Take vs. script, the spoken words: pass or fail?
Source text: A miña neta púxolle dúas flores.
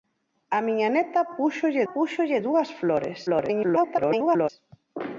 fail